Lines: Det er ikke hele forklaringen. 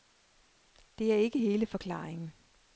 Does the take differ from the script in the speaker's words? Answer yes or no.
no